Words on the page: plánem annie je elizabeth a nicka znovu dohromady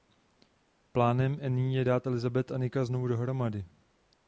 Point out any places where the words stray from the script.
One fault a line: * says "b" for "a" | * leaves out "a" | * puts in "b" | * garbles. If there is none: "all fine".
* puts in "dát"